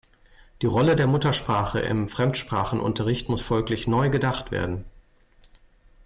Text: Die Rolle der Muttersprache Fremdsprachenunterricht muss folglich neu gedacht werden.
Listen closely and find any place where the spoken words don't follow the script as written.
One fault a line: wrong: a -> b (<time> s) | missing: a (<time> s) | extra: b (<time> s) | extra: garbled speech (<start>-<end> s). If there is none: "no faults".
extra: im (1.8 s)